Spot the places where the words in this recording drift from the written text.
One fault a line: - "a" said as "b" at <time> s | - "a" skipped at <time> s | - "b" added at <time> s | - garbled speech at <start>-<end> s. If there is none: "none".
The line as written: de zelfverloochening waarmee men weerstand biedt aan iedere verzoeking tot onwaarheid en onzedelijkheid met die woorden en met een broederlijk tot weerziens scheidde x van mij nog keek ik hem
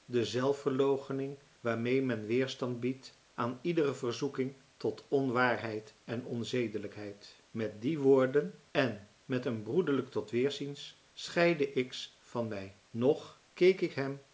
none